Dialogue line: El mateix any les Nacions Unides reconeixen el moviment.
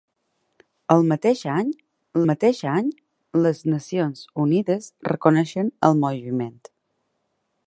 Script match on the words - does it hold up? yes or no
no